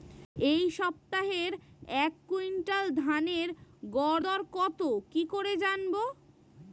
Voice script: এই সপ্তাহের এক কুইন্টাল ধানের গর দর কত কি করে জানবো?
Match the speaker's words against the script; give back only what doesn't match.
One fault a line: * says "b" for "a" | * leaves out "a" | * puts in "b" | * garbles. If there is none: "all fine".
all fine